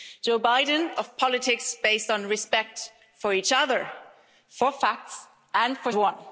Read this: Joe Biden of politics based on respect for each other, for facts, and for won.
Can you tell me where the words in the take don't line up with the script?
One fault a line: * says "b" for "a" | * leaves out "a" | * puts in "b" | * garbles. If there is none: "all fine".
all fine